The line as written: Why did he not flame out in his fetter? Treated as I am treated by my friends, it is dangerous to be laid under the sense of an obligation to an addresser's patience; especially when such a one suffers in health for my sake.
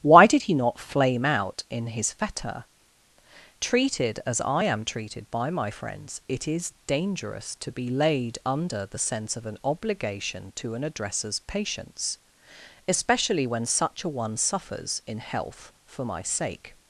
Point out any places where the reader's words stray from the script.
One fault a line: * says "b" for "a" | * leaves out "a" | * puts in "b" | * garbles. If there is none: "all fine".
all fine